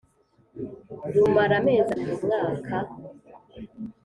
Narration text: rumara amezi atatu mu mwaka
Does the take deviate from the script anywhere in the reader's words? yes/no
yes